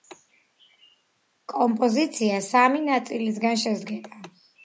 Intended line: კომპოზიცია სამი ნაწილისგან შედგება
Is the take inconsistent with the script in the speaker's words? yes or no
no